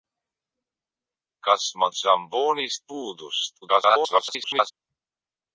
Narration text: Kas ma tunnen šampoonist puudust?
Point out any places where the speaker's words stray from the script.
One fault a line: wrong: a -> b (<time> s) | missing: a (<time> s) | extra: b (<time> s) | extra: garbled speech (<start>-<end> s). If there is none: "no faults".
missing: tunnen (1.9 s)
extra: garbled speech (3.6-4.7 s)